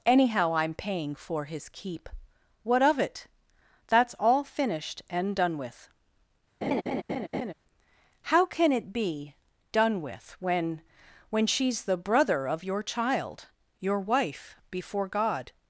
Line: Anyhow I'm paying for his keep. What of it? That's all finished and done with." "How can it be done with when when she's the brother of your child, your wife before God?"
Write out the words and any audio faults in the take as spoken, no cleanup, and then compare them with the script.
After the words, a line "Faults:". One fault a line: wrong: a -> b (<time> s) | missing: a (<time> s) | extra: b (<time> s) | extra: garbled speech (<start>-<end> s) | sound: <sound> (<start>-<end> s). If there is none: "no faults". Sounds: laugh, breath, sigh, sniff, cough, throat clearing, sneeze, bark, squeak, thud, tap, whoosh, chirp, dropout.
Anyhow I'm paying for his keep. What of it? That's all finished and done with." "How can it be done with when when she's the brother of your child, your wife before God?"
Faults:
sound: laugh (6.6-7.5 s)